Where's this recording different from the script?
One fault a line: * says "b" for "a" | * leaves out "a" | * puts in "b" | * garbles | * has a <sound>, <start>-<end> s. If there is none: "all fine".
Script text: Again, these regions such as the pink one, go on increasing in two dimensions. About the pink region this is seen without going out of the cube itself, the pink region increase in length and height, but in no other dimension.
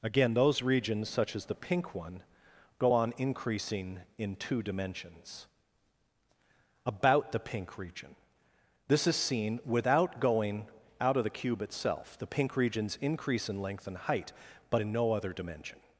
* says "those" for "these"
* says "regions" for "region"